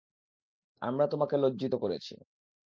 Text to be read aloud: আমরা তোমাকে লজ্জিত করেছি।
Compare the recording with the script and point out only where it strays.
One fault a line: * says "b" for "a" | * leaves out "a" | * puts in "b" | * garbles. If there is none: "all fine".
all fine